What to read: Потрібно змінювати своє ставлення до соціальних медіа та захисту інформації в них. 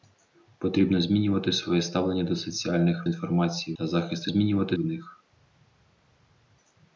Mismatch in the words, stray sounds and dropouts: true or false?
true